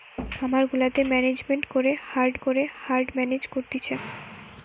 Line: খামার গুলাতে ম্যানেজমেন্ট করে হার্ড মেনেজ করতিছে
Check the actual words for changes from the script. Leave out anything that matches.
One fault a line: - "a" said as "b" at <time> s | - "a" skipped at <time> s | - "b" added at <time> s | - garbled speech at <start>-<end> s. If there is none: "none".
- "করে হার্ড" added at 2.4 s